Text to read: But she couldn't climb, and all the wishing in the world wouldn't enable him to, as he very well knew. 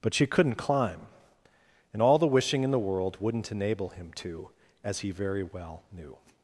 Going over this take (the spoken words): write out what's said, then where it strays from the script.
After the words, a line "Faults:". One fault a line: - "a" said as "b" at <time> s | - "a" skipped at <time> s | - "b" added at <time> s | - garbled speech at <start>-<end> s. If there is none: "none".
But she couldn't climb, and all the wishing in the world wouldn't enable him to, as he very well knew.
Faults:
none